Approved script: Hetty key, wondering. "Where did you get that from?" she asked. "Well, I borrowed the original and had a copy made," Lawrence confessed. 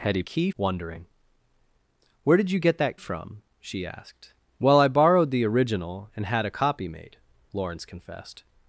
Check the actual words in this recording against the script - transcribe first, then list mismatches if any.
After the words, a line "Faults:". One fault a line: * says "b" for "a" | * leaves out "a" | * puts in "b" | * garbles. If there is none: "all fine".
Hetty key, wondering. "Where did you get that from?" she asked. "Well, I borrowed the original and had a copy made," Lawrence confessed.
Faults:
all fine